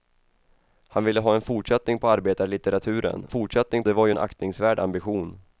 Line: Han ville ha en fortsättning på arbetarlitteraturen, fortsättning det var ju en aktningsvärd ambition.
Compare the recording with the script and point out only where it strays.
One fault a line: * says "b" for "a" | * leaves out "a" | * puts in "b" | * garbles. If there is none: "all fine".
all fine